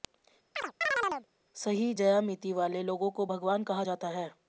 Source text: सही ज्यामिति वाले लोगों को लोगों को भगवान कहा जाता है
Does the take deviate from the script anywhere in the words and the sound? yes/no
yes